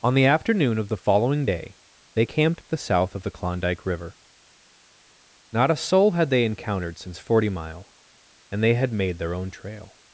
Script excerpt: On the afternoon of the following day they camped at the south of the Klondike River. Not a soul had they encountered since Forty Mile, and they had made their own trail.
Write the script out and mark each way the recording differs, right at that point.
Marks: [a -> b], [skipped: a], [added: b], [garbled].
On the afternoon of the following day they camped at the south of the Klondike River. Not a soul had they encountered since Forty Mile, and they had made their own trail.